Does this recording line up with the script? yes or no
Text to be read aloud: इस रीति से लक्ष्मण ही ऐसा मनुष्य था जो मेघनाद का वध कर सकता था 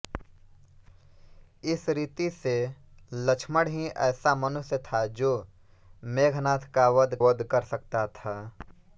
no